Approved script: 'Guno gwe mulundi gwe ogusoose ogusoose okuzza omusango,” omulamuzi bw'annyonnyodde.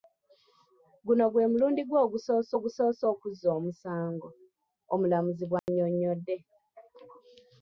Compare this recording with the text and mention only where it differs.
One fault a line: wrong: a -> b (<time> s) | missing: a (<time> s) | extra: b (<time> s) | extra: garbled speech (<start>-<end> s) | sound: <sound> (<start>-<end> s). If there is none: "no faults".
sound: dropout (5.6-5.7 s)